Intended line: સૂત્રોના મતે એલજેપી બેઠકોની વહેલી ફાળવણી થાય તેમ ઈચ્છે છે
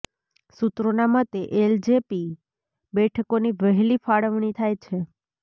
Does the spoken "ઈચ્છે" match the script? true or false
false